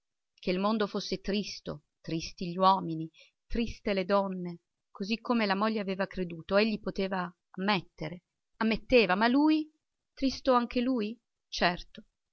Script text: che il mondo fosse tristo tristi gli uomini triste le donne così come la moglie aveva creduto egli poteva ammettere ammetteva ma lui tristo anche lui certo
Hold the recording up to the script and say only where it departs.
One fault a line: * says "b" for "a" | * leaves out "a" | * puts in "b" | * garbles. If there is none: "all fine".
all fine